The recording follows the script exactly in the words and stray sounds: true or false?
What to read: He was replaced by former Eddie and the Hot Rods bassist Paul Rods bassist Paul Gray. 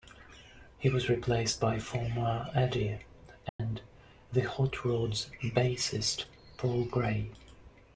false